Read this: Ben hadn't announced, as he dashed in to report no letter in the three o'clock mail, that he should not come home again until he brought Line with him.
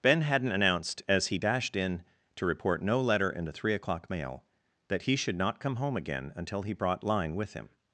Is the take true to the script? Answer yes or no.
yes